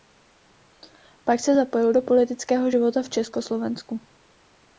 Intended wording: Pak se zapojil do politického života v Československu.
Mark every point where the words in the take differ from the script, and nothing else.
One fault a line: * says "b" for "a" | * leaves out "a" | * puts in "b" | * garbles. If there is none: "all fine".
all fine